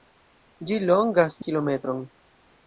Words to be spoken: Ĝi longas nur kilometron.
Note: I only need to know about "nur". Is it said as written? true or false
false